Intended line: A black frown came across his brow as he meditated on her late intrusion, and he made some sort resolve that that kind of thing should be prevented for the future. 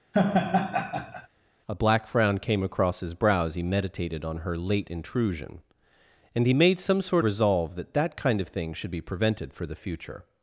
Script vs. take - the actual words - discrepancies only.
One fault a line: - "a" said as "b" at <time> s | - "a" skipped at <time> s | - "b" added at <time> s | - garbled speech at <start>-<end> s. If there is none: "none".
none